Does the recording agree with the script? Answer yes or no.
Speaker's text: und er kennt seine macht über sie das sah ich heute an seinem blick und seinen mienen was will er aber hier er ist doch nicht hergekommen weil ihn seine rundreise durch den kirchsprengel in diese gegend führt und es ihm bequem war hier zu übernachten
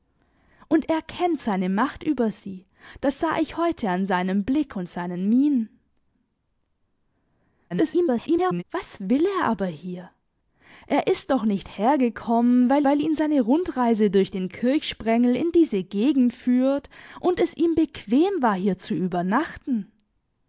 no